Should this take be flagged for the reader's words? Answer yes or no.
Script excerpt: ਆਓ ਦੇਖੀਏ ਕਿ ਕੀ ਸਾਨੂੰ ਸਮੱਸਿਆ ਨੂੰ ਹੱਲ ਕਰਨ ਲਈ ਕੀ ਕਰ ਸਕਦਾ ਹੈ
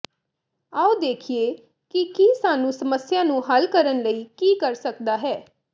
no